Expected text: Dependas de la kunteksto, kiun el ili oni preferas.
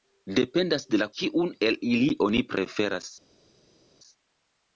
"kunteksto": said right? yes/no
no